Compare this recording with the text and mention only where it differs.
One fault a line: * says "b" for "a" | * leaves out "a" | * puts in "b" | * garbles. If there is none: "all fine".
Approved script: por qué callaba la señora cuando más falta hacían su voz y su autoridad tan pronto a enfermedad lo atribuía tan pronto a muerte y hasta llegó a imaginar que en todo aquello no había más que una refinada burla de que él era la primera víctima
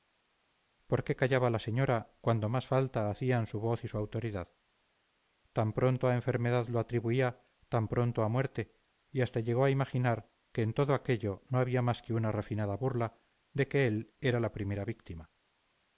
all fine